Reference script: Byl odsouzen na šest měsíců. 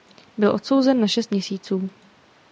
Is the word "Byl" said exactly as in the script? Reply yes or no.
yes